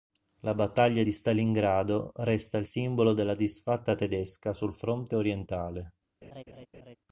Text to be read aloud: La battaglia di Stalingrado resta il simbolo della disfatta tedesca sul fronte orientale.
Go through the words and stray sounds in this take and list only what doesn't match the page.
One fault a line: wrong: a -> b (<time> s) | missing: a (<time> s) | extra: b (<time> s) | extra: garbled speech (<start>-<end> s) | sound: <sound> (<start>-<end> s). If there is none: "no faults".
sound: laugh (6.2-7.0 s)